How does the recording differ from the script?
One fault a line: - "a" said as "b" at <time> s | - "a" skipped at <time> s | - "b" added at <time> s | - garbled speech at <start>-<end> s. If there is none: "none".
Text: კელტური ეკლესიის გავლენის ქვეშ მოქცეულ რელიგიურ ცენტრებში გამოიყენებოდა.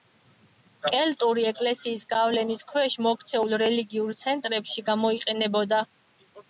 none